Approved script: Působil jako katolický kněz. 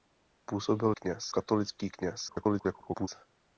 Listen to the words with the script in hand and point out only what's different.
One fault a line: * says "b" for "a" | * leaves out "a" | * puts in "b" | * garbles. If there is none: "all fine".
* says "kněz" for "jako"
* garbles